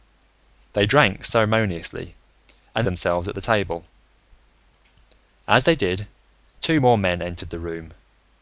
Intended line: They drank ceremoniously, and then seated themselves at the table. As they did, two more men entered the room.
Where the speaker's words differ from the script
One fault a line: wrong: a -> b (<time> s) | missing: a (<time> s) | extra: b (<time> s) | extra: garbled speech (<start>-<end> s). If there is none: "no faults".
missing: then seated (2.9 s)